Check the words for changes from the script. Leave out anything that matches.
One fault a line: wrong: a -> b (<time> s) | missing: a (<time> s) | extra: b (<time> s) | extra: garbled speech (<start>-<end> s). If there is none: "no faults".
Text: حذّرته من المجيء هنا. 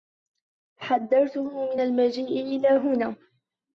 extra: إلى (2.4 s)